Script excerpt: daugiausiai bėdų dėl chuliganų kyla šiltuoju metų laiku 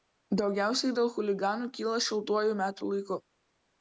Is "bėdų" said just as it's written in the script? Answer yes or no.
no